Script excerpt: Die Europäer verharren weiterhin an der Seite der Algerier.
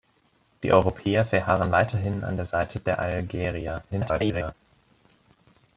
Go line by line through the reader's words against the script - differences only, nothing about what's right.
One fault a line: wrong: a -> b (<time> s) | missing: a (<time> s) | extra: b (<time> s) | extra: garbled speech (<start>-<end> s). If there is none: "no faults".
extra: garbled speech (3.9-4.5 s)